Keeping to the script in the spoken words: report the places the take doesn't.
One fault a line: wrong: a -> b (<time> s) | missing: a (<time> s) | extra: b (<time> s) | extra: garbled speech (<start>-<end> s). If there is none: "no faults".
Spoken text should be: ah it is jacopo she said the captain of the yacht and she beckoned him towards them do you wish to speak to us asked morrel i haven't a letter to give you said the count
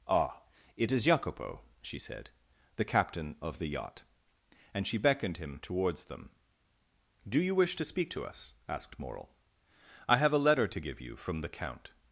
wrong: haven't -> have (10.2 s)
wrong: said -> from (11.2 s)